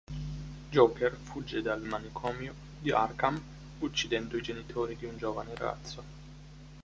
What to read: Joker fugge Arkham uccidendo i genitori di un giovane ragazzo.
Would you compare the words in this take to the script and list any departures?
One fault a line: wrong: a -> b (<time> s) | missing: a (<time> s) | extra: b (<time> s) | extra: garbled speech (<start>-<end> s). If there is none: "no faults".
extra: dal manicomio di (1.6 s)